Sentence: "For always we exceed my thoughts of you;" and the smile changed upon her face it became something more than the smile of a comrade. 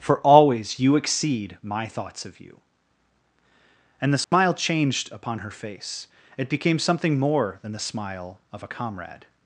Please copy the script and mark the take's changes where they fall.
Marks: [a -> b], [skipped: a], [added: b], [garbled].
"For always [we -> you] exceed my thoughts of you;" and the smile changed upon her face it became something more than the smile of a comrade.